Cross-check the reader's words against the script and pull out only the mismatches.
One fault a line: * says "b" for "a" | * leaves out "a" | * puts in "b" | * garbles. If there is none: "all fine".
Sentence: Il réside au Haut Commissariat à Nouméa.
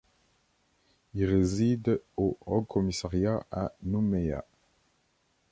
all fine